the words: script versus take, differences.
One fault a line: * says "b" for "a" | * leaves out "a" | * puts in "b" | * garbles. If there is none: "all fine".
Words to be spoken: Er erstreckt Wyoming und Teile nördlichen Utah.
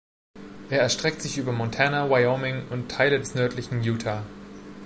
* puts in "sich über Montana"
* puts in "des"